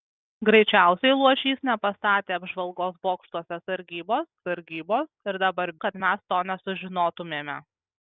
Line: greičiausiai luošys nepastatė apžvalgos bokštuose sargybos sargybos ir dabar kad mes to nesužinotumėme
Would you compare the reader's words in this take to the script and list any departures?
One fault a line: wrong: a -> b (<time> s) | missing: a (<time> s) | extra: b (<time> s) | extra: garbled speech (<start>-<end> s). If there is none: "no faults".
no faults